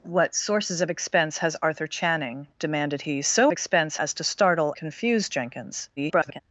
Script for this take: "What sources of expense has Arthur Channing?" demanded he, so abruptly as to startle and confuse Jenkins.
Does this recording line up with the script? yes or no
no